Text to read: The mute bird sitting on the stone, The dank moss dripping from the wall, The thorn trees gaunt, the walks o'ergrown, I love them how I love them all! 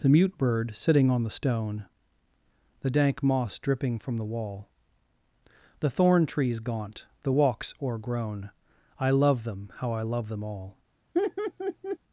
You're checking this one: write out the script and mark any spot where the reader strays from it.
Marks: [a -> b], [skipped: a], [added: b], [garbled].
The mute bird sitting on the stone, The dank moss dripping from the wall, The thorn trees gaunt, the walks o'ergrown, I love them how I love them all!